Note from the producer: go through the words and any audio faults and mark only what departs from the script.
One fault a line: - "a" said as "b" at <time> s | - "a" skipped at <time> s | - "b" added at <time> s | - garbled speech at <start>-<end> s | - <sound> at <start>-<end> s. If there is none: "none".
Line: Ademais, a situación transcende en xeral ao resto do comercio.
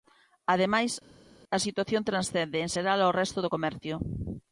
none